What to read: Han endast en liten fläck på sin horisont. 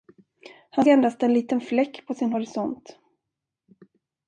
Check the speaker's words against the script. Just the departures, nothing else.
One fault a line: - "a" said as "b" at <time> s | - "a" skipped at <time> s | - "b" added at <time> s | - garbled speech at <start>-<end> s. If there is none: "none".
none